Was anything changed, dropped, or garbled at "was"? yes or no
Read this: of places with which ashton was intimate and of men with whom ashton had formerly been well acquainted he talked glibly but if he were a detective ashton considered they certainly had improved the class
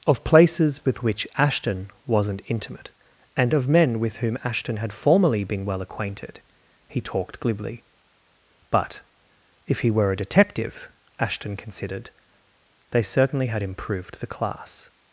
yes